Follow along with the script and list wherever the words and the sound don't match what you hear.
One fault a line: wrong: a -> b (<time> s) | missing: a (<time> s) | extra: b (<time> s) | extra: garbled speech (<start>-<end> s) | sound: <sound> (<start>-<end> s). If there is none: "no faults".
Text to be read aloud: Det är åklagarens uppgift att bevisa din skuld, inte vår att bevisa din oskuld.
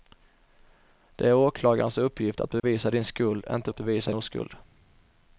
sound: dropout (2.6-2.6 s)
missing: vår (3.7 s)
missing: din (4.1 s)